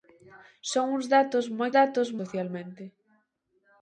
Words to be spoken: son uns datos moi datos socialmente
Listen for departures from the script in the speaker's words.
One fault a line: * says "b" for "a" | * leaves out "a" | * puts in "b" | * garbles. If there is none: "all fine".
all fine